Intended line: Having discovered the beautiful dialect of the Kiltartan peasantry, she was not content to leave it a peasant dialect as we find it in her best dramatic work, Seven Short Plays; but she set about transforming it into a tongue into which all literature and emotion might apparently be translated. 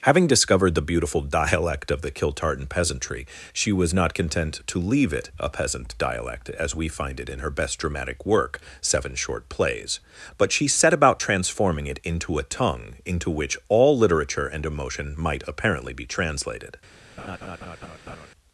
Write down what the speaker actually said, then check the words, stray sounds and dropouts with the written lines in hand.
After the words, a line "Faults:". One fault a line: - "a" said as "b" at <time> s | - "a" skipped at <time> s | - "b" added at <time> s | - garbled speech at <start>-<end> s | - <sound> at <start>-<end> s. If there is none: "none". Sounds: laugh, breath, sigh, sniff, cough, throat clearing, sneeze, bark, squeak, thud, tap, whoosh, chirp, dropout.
Having discovered the beautiful dialect of the Kiltartan peasantry, she was not content to leave it a peasant dialect as we find it in her best dramatic work, Seven Short Plays; but she set about transforming it into a tongue into which all literature and emotion might apparently be translated.
Faults:
- laugh at 17.2-18.3 s